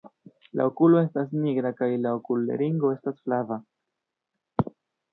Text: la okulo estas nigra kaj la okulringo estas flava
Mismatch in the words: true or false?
false